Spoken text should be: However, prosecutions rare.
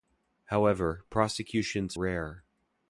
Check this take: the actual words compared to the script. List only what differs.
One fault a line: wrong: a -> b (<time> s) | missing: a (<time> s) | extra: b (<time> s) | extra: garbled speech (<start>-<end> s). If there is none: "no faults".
no faults